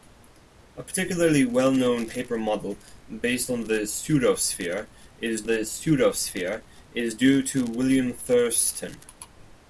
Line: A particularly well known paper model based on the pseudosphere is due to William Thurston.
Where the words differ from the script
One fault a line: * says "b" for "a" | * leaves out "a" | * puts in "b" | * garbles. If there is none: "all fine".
* puts in "the pseudosphere is"